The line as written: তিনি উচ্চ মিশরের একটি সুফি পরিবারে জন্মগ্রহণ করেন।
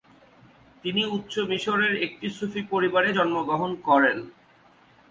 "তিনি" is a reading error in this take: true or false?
false